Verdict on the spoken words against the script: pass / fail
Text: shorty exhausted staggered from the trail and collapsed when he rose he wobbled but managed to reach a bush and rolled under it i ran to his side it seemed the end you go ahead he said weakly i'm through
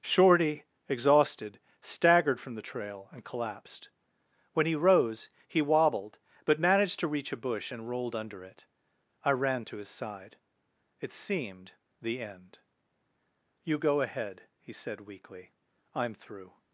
pass